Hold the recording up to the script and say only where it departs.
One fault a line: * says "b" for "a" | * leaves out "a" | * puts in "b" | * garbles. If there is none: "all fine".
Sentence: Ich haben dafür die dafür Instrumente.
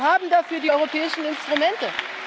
* says "Wir" for "Ich"
* says "europäischen" for "dafür"